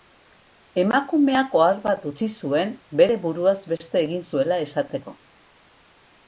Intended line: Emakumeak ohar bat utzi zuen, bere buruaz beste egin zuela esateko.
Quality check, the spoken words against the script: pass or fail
pass